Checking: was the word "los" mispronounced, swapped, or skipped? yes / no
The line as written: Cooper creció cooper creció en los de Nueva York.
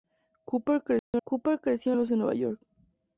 no